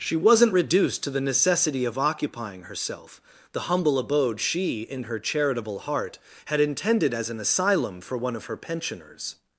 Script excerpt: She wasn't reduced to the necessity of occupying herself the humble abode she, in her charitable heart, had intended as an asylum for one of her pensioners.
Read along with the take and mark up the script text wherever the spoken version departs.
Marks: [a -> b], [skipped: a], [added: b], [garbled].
She wasn't reduced to the necessity of occupying herself the humble abode she, in her charitable heart, had intended as an asylum for one of her pensioners.